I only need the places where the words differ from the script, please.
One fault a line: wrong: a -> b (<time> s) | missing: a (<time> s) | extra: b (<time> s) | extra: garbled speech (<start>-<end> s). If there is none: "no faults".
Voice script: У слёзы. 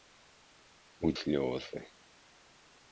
no faults